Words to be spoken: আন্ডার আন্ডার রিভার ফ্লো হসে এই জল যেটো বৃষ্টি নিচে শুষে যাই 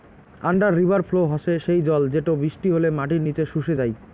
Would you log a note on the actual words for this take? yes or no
yes